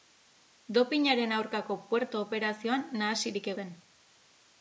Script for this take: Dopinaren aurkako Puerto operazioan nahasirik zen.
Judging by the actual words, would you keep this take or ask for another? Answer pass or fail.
pass